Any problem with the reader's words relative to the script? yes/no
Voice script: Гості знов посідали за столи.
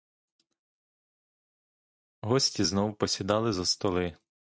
no